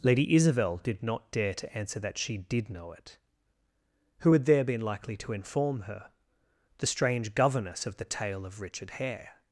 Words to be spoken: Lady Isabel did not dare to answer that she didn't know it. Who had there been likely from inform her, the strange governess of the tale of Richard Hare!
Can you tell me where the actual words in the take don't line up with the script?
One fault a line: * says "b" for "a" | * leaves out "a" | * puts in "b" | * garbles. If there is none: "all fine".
* says "did" for "didn't"
* says "to" for "from"